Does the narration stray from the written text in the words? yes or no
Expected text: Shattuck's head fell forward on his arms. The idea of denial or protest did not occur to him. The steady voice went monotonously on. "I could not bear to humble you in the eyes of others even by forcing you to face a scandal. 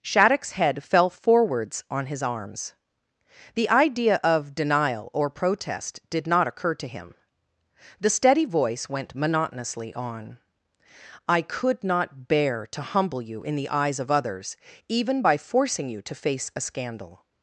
yes